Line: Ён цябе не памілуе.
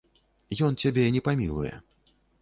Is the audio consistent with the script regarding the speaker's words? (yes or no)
yes